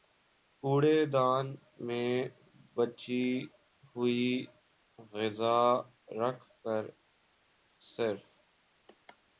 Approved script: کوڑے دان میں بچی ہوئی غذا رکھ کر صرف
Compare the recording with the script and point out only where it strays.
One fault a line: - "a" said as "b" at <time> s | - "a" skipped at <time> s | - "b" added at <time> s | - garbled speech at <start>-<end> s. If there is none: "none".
none